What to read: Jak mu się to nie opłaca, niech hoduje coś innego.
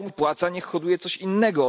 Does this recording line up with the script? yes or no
no